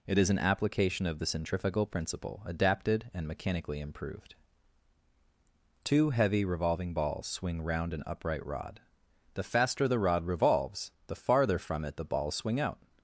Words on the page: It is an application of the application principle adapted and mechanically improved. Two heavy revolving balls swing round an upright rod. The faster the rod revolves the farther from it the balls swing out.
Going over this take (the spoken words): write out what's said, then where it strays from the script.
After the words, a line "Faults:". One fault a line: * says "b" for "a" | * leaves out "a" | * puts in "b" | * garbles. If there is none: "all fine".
It is an application of the centrifugal principle adapted and mechanically improved. Two heavy revolving balls swing round an upright rod. The faster the rod revolves the farther from it the balls swing out.
Faults:
* says "centrifugal" for "application"